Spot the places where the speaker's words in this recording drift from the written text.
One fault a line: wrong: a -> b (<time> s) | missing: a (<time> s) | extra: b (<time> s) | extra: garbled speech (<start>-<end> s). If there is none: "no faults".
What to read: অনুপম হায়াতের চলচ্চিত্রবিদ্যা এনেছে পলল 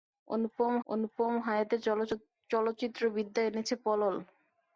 extra: অনুপম (0.9 s)